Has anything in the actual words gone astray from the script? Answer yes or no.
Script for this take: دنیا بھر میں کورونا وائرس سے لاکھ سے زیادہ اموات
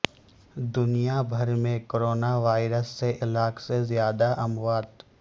no